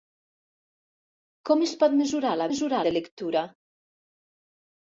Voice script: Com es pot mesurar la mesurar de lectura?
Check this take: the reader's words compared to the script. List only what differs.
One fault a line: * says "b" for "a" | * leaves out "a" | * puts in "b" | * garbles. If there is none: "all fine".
all fine